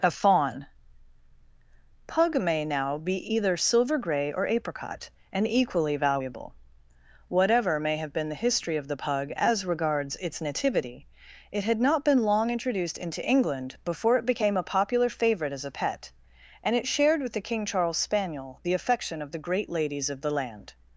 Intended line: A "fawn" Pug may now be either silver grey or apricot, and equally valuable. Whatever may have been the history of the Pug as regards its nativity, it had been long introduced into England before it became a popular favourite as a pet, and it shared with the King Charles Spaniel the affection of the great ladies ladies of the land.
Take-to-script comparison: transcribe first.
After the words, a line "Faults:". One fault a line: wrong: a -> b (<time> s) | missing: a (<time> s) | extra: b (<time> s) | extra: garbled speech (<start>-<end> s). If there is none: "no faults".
A "fawn" Pug may now be either silver grey or apricot, and equally valuable. Whatever may have been the history of the Pug as regards its nativity, it had not been long introduced into England before it became a popular favourite as a pet, and it shared with the King Charles Spaniel the affection of the great ladies of the land.
Faults:
extra: not (11.8 s)
missing: ladies (20.1 s)